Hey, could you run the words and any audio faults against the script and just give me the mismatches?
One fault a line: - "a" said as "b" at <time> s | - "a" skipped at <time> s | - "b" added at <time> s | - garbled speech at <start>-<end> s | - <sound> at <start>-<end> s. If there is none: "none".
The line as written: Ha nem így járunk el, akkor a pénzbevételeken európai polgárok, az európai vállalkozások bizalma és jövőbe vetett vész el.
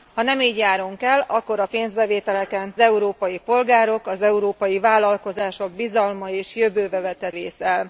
none